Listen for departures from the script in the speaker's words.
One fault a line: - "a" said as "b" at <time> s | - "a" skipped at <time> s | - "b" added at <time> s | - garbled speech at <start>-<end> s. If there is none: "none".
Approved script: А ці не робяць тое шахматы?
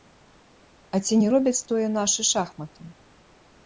- "нашы" added at 2.0 s